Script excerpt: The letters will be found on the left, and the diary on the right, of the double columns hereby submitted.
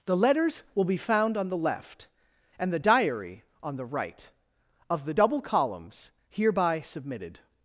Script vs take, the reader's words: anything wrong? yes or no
no